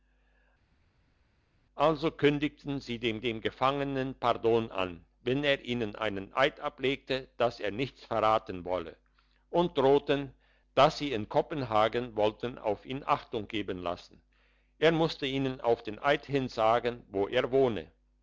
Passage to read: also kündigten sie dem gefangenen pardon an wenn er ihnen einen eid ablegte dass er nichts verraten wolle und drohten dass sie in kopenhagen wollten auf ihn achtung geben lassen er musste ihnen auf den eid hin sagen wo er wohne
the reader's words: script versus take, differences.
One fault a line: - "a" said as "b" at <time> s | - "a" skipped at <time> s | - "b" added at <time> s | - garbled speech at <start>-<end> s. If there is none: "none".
- "dem" added at 3.2 s